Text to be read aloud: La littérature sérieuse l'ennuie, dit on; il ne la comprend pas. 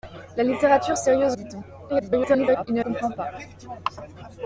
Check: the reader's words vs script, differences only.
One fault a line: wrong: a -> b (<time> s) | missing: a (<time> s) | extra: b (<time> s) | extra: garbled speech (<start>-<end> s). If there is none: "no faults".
missing: l'ennuie (1.4 s)
extra: garbled speech (1.9-2.7 s)
missing: la (2.8 s)